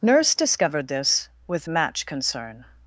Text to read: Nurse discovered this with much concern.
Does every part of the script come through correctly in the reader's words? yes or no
no